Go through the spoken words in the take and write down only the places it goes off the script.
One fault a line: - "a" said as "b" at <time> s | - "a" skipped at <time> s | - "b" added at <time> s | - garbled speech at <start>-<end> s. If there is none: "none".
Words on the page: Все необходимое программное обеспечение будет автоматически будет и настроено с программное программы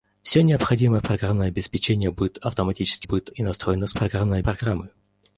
none